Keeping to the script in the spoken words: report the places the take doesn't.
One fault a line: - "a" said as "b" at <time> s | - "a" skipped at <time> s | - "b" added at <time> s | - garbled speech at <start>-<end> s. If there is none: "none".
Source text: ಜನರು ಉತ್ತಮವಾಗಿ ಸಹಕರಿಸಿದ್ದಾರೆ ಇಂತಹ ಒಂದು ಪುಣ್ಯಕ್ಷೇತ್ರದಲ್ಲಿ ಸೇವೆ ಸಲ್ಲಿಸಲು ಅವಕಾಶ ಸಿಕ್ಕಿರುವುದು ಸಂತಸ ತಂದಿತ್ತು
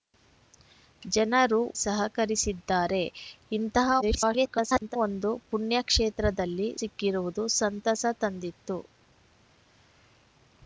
- "ಉತ್ತಮವಾಗಿ" skipped at 1.6 s
- garbled speech at 4.0-5.0 s
- "ಸೇವೆ ಸಲ್ಲಿಸಲು ಅವಕಾಶ" skipped at 6.7 s